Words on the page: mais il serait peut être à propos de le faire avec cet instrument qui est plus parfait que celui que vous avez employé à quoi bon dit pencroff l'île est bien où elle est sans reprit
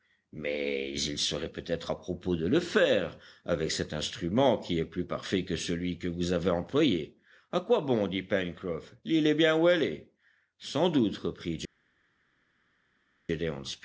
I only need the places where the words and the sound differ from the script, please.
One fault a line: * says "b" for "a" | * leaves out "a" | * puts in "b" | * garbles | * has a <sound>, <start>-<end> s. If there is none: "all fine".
* puts in "doute"